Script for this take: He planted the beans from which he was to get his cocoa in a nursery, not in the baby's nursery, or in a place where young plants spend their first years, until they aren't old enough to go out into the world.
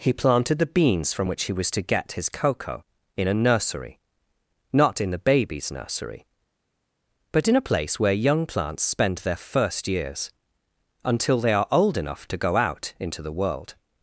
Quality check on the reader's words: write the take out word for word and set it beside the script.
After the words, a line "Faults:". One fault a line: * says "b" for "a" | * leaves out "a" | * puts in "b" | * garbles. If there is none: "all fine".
He planted the beans from which he was to get his cocoa in a nursery, not in the baby's nursery, but in a place where young plants spend their first years, until they are old enough to go out into the world.
Faults:
* says "but" for "or"
* says "are" for "aren't"